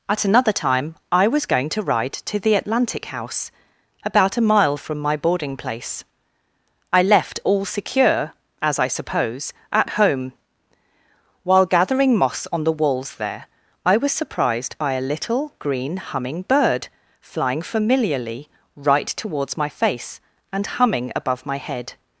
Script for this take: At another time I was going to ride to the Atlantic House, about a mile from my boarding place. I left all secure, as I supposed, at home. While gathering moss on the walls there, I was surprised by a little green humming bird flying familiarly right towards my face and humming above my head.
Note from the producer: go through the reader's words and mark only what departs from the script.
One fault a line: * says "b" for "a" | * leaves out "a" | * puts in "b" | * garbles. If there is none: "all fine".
* says "suppose" for "supposed"